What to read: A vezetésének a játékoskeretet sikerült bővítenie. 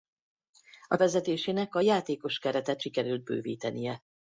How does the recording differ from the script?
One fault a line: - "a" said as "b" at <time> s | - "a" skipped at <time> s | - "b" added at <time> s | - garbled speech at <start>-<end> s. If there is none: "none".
none